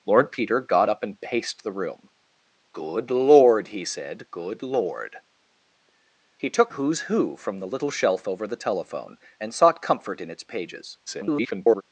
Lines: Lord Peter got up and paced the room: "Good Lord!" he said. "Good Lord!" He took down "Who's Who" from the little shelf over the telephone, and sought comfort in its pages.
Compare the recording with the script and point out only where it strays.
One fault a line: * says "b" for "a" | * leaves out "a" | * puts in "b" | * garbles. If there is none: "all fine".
* leaves out "down"
* garbles